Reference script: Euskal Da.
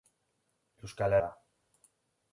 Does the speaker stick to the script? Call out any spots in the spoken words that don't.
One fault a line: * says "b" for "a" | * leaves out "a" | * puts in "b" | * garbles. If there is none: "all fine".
all fine